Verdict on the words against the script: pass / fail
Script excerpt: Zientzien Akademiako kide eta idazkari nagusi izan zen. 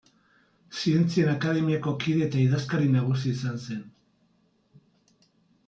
pass